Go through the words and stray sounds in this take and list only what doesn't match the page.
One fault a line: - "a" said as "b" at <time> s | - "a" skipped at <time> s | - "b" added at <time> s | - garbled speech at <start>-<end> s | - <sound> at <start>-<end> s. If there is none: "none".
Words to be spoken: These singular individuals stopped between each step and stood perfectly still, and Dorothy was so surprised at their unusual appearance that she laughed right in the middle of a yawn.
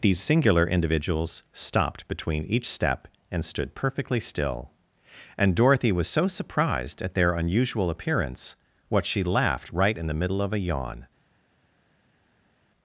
- "that" said as "what" at 8.9 s